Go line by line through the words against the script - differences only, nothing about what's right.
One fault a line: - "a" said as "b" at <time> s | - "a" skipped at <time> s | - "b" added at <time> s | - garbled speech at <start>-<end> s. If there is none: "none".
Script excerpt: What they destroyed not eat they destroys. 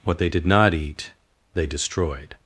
- "destroyed" said as "did" at 0.3 s
- "destroys" said as "destroyed" at 1.7 s